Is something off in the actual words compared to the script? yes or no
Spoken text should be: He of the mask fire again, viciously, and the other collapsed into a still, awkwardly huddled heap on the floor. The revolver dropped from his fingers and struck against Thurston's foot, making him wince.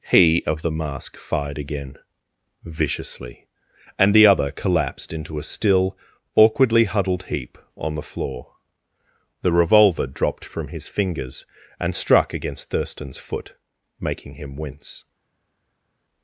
yes